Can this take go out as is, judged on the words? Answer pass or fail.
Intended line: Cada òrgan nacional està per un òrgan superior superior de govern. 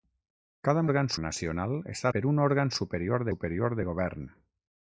pass